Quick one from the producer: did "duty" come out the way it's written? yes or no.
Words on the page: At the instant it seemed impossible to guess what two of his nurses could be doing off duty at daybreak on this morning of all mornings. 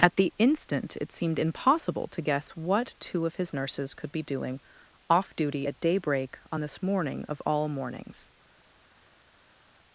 yes